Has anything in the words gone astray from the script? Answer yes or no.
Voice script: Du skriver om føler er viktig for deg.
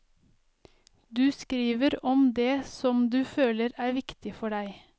yes